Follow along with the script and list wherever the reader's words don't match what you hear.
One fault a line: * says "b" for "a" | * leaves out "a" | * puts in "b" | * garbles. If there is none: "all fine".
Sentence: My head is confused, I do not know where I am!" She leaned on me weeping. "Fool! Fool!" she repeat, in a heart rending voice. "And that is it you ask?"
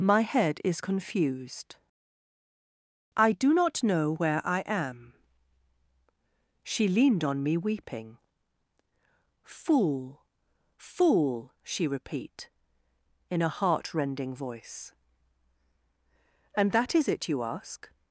all fine